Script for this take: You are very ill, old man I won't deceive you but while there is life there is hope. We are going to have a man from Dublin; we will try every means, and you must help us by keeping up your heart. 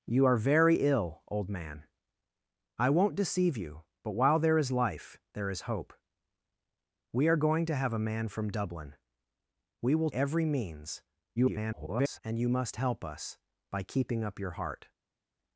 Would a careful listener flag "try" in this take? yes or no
yes